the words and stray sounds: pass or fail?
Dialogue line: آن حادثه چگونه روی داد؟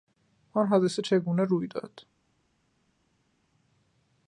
pass